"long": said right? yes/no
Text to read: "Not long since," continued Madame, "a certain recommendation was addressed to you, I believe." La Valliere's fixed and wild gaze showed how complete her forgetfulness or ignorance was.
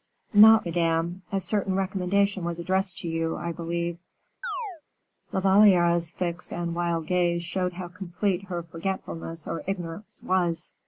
no